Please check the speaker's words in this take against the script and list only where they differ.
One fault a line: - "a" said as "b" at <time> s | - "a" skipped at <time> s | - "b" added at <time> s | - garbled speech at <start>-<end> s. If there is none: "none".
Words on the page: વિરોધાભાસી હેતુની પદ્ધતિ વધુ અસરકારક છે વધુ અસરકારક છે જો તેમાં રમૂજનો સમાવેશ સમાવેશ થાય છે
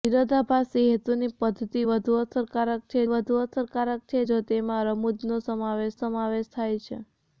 none